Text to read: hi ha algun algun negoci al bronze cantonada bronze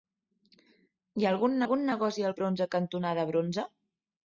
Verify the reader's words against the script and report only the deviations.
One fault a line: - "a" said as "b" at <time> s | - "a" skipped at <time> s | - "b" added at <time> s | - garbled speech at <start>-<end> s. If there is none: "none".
none